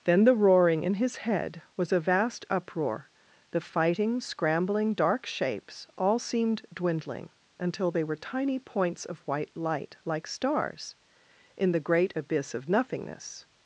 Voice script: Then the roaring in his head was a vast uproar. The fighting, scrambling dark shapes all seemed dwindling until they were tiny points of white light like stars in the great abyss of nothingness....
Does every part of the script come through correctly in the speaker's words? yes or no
yes